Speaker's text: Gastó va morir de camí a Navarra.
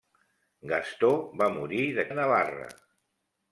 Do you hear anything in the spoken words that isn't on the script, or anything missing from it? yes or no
yes